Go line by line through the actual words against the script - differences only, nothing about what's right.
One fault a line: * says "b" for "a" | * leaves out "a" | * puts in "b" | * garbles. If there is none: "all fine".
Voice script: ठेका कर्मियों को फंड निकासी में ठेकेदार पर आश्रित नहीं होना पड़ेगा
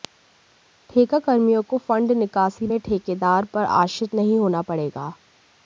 all fine